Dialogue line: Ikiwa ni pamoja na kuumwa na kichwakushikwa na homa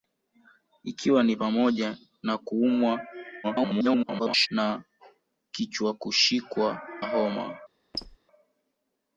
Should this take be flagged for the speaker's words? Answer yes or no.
yes